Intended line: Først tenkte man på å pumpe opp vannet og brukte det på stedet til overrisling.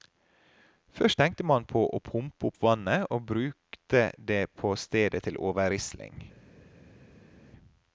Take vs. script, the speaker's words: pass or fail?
pass